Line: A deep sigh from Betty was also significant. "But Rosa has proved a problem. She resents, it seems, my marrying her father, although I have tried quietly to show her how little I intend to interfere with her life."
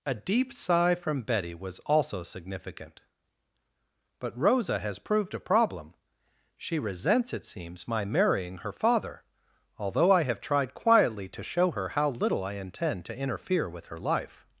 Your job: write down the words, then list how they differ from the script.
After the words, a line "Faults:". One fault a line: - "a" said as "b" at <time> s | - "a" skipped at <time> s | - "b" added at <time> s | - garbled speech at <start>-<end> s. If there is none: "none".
A deep sigh from Betty was also significant. "But Rosa has proved a problem. She resents, it seems, my marrying her father, although I have tried quietly to show her how little I intend to interfere with her life."
Faults:
none